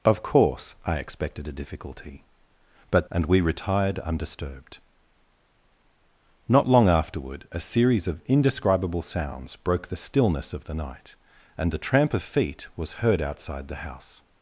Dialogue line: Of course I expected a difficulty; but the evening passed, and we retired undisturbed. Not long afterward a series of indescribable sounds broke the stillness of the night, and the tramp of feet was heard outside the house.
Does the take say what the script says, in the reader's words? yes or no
no